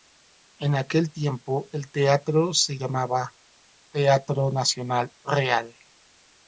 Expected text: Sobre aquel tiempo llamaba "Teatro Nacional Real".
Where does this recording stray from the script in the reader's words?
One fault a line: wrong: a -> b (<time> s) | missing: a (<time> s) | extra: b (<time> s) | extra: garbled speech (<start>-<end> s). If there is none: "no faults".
wrong: Sobre -> En (0.6 s)
extra: el teatro se (1.7 s)